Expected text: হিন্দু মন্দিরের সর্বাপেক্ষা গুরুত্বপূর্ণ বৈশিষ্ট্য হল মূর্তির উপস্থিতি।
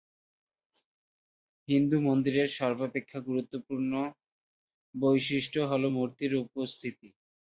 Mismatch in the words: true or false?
false